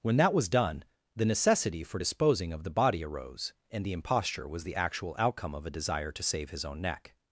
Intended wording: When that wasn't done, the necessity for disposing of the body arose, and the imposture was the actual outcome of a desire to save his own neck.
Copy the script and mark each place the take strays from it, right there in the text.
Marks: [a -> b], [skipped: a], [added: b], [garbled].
When that [wasn't -> was] done, the necessity for disposing of the body arose, and the imposture was the actual outcome of a desire to save his own neck.